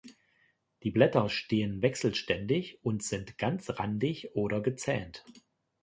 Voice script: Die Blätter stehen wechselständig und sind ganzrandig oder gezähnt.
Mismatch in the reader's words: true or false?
false